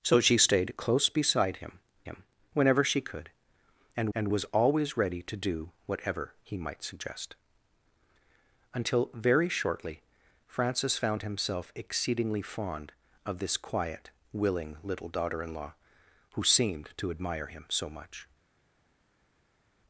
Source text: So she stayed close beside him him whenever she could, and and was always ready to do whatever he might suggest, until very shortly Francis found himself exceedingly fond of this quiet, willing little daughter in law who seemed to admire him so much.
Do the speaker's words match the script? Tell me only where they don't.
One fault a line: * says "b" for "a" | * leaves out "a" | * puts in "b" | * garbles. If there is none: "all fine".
all fine